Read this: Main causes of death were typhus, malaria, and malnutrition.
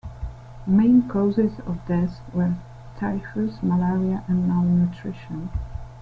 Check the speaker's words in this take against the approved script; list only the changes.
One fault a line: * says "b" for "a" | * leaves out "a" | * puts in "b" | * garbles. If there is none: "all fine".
all fine